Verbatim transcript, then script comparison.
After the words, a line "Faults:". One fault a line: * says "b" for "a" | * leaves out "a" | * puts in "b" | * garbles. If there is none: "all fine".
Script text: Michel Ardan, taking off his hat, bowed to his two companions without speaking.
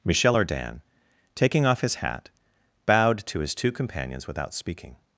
Michel Ardan, taking off his hat, bowed to his two companions without speaking.
Faults:
all fine